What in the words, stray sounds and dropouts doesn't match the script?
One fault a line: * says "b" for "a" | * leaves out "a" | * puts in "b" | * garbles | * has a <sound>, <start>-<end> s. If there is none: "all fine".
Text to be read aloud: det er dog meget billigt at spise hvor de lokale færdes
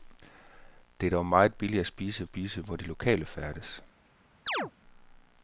* puts in "spise"
* has a chirp, 4.5-4.7 s